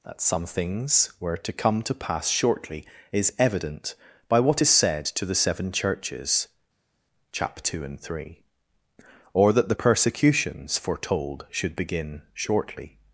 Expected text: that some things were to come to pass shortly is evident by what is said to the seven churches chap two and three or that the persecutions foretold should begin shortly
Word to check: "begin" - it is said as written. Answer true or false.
true